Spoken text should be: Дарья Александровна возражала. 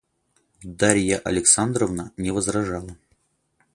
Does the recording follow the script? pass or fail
fail